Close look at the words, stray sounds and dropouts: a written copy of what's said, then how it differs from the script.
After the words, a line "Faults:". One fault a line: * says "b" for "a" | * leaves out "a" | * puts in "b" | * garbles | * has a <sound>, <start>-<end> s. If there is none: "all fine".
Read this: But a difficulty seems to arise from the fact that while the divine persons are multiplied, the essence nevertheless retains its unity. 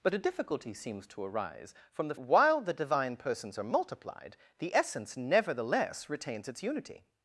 But a difficulty seems to arise from the while the divine persons are multiplied, the essence nevertheless retains its unity.
Faults:
* leaves out "fact that"